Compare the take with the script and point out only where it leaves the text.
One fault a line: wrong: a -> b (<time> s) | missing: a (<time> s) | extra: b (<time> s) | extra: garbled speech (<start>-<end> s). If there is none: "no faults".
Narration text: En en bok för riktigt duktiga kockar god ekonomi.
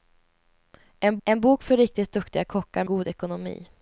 no faults